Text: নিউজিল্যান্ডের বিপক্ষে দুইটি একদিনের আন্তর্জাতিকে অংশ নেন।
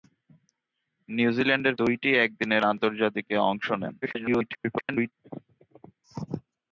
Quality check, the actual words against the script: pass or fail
fail